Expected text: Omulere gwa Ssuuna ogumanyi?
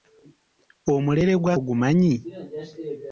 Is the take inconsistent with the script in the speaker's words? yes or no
yes